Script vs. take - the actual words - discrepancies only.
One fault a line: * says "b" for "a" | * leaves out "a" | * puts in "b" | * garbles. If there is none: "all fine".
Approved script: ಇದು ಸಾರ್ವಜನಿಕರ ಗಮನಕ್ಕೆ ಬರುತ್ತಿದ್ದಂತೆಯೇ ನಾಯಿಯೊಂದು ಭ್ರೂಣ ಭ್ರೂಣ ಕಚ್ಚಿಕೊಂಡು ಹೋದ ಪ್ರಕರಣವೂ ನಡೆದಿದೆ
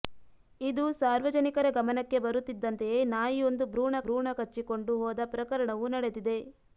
all fine